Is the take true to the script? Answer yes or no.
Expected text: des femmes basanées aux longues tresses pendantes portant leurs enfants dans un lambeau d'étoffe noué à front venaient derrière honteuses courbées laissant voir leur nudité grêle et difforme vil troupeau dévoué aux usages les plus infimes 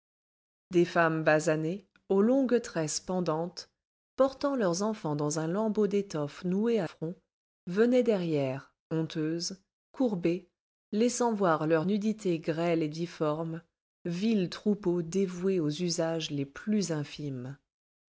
yes